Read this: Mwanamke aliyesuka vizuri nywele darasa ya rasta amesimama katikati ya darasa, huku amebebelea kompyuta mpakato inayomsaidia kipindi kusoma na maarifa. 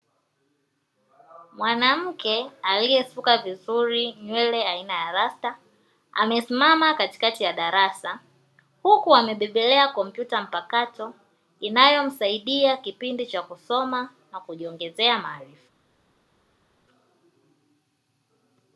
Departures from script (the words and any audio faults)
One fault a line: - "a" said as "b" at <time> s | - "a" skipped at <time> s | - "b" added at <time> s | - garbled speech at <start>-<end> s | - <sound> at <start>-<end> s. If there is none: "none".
- "darasa" said as "aina" at 4.7 s
- "cha" added at 13.3 s
- "kujiongezea" added at 14.4 s